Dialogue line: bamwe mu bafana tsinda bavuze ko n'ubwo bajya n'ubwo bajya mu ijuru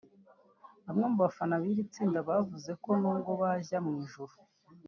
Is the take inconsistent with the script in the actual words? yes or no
yes